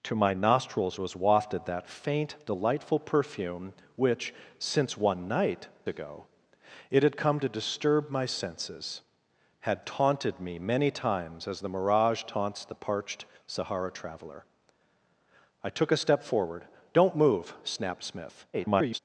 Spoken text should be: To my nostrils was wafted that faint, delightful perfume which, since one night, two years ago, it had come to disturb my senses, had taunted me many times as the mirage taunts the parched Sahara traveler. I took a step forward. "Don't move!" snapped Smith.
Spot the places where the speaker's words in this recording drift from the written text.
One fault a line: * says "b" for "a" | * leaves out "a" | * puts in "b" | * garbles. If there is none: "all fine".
* leaves out "two years"
* garbles